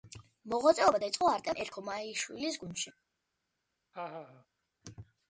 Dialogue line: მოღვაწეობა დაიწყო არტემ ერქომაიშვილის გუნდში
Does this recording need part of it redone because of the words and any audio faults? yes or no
yes